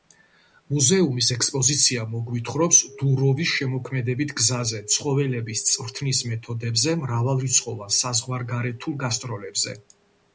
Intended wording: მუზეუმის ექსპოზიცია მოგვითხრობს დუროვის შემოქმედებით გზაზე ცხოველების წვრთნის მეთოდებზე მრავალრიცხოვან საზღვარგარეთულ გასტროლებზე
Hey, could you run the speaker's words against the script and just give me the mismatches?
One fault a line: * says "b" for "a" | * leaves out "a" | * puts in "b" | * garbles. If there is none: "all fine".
all fine